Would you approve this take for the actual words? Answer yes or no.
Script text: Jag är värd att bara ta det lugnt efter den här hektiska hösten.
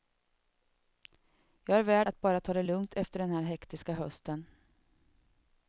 yes